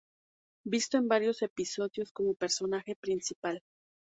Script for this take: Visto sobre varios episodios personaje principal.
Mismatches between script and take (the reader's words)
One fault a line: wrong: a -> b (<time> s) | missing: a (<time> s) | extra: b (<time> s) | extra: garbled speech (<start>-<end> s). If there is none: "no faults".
wrong: sobre -> en (1.0 s)
extra: como (2.1 s)